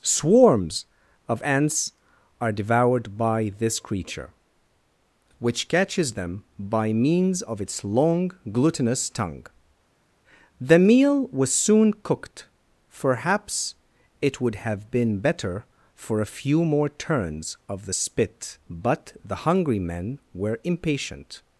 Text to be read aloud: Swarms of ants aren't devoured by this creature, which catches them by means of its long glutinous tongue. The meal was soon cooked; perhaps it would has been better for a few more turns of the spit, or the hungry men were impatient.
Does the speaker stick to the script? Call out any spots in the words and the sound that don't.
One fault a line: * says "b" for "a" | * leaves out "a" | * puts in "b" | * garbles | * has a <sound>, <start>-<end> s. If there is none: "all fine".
* says "are" for "aren't"
* says "have" for "has"
* says "but" for "or"